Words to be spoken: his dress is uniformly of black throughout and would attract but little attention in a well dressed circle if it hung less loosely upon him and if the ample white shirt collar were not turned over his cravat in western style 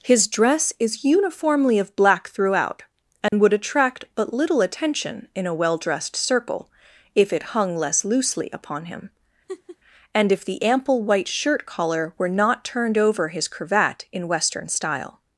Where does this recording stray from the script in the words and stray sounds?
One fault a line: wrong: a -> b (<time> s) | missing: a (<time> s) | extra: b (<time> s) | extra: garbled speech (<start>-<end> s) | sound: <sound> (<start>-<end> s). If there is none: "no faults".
sound: dropout (3.3-3.3 s)
sound: laugh (9.5-9.8 s)